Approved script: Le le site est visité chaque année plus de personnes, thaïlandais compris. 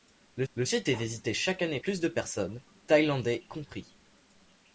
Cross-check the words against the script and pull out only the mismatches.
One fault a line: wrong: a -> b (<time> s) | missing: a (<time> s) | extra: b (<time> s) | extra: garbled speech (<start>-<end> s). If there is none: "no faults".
no faults